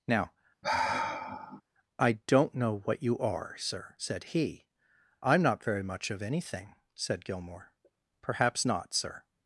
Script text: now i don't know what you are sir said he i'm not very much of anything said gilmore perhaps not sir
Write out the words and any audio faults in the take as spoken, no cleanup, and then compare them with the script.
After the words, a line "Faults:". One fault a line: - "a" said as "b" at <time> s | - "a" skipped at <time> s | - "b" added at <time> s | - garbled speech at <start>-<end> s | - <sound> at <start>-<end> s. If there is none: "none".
now i don't know what you are sir said he i'm not very much of anything said gilmore perhaps not sir
Faults:
- sigh at 0.6-1.6 s